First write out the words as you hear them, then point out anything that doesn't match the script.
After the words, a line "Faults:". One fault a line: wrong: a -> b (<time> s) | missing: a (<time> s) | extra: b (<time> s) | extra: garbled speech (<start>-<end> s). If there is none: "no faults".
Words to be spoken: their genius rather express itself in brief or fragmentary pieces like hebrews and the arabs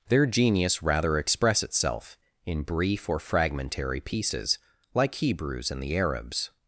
their genius rather express itself in brief or fragmentary pieces like hebrews and the arabs
Faults:
no faults